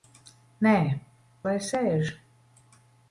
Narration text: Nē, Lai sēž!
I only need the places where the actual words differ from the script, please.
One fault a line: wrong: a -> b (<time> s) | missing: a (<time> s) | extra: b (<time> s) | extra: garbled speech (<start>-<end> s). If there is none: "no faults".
no faults